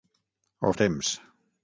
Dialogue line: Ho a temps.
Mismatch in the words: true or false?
false